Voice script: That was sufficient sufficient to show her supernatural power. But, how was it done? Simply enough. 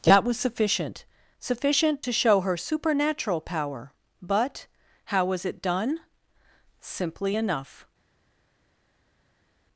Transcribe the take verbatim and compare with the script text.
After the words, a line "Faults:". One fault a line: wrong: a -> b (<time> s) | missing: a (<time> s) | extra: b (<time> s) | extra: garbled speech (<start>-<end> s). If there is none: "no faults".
That was sufficient sufficient to show her supernatural power. But, how was it done? Simply enough.
Faults:
no faults